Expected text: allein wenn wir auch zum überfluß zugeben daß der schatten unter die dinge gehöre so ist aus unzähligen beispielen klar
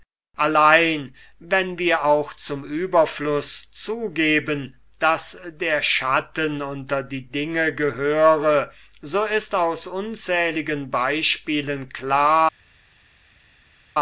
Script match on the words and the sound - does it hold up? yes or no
yes